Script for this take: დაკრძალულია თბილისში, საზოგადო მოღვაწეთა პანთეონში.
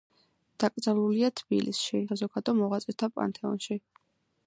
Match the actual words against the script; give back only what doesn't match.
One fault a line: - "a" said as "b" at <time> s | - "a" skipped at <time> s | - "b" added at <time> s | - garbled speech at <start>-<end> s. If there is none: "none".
none